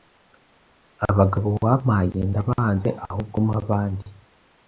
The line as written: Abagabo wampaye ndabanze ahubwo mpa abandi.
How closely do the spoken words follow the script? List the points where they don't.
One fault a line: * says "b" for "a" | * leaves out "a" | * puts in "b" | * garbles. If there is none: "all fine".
all fine